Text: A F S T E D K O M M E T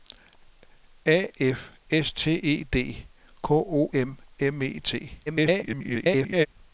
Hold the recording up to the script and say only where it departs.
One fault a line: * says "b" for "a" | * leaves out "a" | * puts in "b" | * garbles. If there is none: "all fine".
* garbles